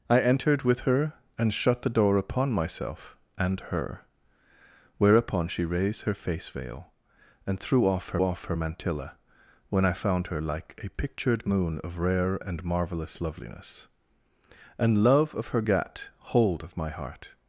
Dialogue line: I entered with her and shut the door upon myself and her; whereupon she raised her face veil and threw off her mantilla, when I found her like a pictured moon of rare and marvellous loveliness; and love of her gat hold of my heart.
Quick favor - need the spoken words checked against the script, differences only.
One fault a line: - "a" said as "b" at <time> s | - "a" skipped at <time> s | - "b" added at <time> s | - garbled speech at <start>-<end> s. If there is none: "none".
- "off her" added at 8.2 s